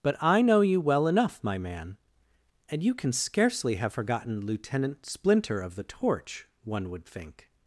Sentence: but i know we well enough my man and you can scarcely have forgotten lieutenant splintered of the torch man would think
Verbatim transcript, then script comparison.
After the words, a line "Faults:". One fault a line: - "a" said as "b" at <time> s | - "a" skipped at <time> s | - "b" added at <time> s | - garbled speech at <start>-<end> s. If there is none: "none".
but i know you well enough my man and you can scarcely have forgotten lieutenant splinter of the torch one would think
Faults:
- "we" said as "you" at 0.6 s
- "splintered" said as "splinter" at 5.1 s
- "man" said as "one" at 6.6 s